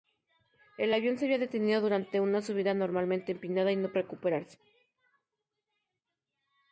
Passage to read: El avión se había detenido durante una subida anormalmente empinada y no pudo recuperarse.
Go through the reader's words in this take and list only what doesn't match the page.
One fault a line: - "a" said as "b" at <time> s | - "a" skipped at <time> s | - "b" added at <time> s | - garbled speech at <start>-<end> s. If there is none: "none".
- "pudo" skipped at 3.9 s